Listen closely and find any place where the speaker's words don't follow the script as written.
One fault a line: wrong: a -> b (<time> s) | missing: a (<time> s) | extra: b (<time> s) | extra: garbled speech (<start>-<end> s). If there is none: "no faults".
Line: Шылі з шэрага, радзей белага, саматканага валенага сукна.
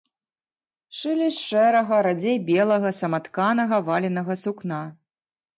no faults